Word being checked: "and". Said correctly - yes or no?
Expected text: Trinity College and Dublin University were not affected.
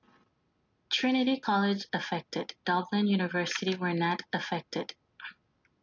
no